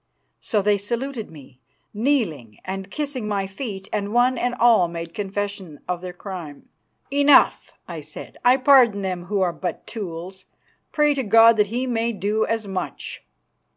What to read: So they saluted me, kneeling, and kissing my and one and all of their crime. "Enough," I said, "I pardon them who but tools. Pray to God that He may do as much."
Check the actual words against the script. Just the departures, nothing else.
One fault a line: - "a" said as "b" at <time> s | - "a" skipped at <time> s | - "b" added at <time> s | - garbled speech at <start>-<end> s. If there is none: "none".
- "feet" added at 3.5 s
- "made confession" added at 4.9 s
- "are" added at 9.4 s